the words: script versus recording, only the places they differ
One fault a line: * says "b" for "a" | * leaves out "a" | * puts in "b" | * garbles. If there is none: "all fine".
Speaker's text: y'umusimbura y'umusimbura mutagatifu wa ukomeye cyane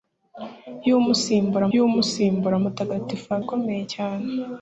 all fine